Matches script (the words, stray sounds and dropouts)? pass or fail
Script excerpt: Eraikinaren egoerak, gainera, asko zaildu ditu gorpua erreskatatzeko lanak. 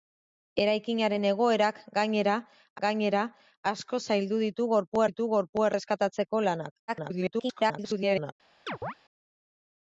fail